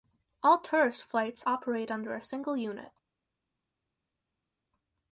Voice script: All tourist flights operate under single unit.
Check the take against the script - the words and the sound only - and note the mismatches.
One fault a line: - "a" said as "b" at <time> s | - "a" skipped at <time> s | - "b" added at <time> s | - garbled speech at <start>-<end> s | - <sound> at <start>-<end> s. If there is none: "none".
- "a" added at 2.1 s